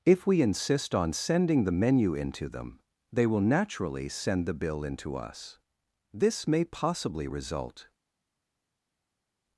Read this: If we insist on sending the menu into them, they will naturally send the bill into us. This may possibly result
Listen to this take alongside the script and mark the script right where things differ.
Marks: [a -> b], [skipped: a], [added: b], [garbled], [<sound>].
If we insist on sending the menu into them, they will naturally send the bill into us. This may possibly result